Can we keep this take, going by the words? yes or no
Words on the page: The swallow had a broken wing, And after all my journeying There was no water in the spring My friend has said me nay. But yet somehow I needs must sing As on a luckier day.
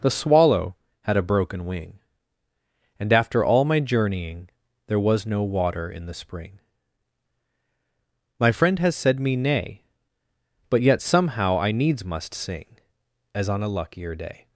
yes